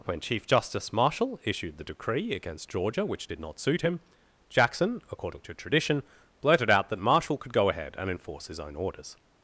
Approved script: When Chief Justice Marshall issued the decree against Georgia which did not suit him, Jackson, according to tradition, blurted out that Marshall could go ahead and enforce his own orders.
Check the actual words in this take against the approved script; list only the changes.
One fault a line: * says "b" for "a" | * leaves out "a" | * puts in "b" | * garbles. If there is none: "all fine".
all fine